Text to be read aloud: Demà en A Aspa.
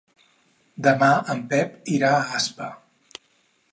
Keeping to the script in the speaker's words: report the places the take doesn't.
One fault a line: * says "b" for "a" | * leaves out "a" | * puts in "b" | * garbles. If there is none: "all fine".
* puts in "Pep irà"